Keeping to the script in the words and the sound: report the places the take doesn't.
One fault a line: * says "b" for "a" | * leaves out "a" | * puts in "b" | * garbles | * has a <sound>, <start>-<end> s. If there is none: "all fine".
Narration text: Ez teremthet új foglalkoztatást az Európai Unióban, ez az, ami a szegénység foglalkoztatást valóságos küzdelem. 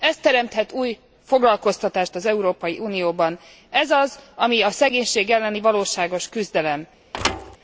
* says "elleni" for "foglalkoztatást"
* has a thud, 7.1-7.6 s